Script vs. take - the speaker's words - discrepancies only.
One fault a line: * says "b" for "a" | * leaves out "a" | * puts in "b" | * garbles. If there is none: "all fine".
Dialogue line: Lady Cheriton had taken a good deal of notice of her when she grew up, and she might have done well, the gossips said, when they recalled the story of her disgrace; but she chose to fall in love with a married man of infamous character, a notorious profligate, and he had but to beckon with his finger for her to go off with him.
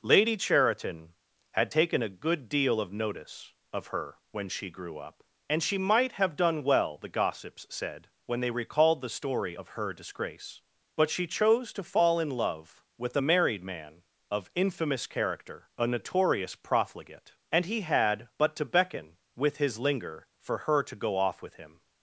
* says "linger" for "finger"